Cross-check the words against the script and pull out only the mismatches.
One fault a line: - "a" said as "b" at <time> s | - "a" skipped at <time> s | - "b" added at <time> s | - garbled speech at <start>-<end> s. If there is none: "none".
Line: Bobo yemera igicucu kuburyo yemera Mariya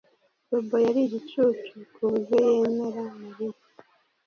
- "yemera" said as "yari" at 0.9 s